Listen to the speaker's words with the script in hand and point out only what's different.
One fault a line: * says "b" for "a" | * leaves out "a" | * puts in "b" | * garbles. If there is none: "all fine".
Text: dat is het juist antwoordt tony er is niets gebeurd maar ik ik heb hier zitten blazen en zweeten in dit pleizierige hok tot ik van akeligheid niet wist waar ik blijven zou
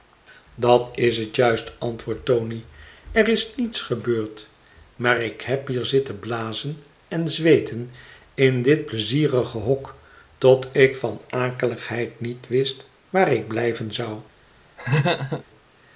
* leaves out "ik"